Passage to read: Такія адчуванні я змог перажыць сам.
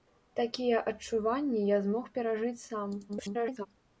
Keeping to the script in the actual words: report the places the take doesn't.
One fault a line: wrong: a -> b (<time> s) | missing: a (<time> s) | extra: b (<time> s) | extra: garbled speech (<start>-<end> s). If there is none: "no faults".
extra: garbled speech (3.1-3.7 s)